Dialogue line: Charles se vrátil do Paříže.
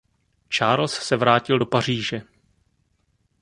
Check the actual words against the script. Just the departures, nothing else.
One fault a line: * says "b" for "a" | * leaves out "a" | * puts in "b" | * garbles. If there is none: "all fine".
all fine